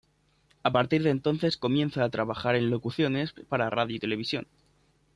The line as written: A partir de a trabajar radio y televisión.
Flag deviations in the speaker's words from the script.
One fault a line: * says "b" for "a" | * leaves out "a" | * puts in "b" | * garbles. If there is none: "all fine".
* puts in "entonces comienza"
* puts in "en locuciones para"